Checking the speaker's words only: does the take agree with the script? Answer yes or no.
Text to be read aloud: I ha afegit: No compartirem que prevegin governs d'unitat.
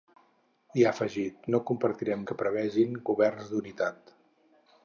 yes